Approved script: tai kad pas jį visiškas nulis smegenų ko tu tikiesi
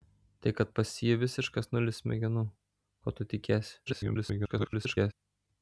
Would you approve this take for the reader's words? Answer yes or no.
no